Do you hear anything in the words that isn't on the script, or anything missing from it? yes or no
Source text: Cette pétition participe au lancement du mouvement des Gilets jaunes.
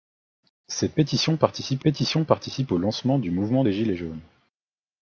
yes